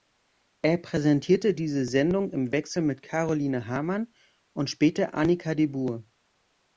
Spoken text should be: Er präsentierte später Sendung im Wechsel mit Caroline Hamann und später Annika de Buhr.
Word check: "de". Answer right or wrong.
right